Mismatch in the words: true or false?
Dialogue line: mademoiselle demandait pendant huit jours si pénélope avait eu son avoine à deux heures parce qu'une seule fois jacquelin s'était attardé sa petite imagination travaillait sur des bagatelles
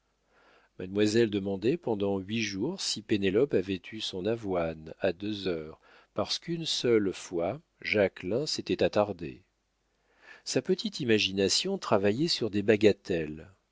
false